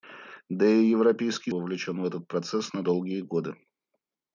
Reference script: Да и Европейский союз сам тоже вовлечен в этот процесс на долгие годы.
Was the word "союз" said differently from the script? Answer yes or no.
yes